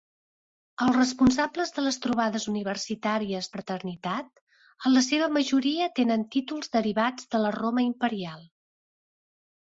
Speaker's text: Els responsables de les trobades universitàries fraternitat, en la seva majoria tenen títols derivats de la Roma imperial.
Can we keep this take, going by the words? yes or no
yes